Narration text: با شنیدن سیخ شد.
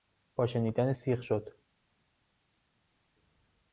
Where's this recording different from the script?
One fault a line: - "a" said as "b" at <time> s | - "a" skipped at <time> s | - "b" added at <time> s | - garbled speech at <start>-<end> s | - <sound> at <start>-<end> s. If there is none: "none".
none